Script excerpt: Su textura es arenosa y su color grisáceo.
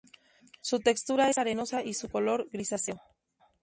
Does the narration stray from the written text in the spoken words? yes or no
no